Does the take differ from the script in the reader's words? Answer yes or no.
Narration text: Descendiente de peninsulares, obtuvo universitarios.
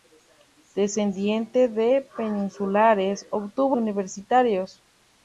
no